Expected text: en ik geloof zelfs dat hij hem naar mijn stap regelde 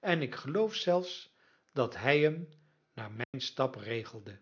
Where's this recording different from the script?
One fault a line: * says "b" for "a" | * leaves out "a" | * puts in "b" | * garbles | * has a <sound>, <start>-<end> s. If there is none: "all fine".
* has a dropout, 3.2-3.3 s